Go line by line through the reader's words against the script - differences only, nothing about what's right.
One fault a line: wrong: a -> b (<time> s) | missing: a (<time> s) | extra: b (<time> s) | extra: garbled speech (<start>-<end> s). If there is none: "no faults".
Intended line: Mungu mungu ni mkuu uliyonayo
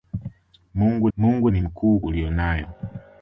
no faults